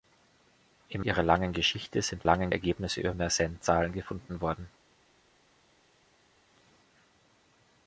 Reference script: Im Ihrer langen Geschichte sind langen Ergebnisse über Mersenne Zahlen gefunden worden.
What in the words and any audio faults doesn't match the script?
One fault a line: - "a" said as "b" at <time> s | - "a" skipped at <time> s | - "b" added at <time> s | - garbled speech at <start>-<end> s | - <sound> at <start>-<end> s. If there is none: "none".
none